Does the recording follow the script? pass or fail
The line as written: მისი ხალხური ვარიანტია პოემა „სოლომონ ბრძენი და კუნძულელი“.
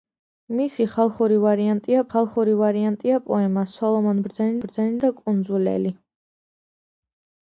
fail